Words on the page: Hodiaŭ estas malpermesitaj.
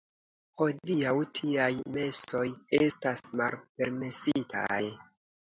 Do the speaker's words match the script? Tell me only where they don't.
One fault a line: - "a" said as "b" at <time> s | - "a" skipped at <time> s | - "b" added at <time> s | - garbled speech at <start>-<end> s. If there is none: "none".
- "tiaj mesoj" added at 1.4 s